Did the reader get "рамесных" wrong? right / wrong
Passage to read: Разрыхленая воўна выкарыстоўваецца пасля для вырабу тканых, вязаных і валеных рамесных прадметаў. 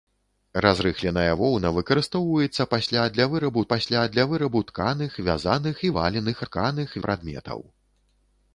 wrong